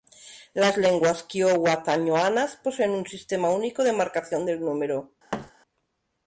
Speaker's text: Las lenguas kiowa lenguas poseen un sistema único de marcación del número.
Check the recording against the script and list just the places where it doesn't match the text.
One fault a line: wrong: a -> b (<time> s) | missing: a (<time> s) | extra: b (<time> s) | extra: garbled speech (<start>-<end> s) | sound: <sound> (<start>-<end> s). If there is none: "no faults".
wrong: lenguas -> tañoanas (1.8 s)
sound: thud (5.3-5.5 s)